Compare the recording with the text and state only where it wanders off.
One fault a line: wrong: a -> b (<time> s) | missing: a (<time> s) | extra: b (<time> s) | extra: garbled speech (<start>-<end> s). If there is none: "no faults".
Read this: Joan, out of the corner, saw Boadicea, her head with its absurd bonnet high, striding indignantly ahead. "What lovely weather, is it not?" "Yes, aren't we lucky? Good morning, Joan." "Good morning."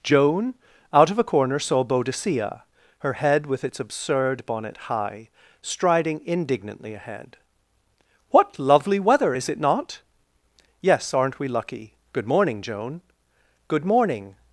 wrong: the -> a (1.2 s)